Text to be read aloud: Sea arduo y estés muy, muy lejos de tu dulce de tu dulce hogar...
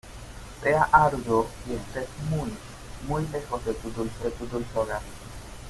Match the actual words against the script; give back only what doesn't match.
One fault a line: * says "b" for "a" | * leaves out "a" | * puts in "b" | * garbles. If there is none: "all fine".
all fine